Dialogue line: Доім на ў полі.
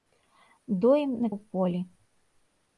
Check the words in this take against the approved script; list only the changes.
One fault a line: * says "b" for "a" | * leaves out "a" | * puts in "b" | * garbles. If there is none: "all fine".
all fine